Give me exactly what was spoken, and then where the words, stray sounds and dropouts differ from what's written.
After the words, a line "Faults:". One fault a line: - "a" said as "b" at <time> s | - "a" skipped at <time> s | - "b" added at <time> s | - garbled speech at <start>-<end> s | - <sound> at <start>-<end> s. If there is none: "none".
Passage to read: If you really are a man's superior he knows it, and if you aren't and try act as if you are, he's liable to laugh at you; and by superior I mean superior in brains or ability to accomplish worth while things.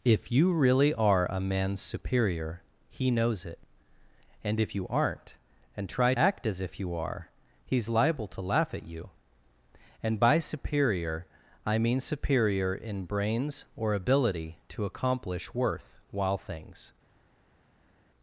If you really are a man's superior he knows it, and if you aren't and try act as if you are, he's liable to laugh at you; and by superior I mean superior in brains or ability to accomplish worth while things.
Faults:
none